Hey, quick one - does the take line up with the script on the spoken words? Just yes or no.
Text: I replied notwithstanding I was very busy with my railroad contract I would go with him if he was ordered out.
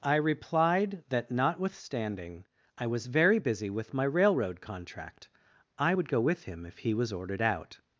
no